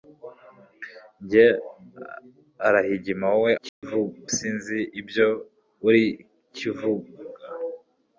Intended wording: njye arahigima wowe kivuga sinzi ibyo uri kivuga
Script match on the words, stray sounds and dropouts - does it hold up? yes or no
no